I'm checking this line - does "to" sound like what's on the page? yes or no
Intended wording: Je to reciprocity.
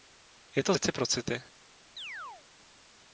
yes